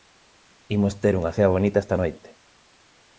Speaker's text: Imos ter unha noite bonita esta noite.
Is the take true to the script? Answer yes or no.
no